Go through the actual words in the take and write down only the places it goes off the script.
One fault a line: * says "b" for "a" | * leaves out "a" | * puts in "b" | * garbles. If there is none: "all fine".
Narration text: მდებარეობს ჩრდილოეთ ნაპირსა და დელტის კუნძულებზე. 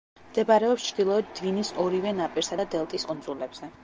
* puts in "დვინის ორივე"